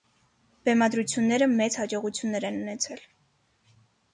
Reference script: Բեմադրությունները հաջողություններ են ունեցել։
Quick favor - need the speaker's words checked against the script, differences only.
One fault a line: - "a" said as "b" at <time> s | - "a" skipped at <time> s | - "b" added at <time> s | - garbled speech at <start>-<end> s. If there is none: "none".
- "մեծ" added at 1.5 s